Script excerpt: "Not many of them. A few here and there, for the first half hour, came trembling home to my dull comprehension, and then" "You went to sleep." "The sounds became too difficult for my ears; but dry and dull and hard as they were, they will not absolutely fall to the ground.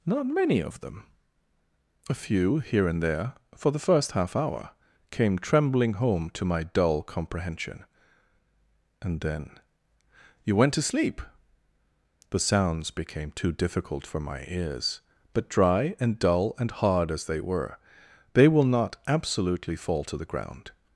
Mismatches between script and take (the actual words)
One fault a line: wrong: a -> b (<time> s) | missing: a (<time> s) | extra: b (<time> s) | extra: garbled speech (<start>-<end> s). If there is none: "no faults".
no faults